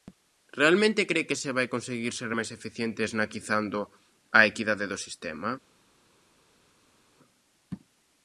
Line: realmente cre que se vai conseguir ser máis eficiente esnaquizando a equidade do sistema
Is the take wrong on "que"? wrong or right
right